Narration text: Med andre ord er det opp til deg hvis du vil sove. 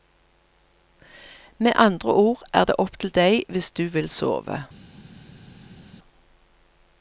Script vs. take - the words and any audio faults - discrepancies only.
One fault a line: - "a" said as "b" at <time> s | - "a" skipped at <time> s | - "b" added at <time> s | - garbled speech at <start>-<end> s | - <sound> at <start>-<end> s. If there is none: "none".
none